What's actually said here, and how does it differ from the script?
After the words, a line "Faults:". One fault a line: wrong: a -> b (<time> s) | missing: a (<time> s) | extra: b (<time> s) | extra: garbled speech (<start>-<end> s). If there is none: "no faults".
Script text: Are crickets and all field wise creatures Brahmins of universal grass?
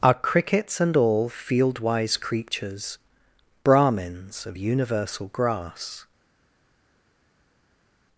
Are crickets and all field wise creatures Brahmins of universal grass?
Faults:
no faults